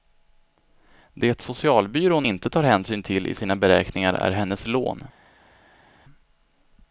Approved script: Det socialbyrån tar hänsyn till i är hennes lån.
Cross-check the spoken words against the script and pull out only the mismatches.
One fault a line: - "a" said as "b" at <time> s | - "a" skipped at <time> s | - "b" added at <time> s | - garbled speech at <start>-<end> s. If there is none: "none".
- "inte" added at 2.2 s
- "sina beräkningar" added at 3.3 s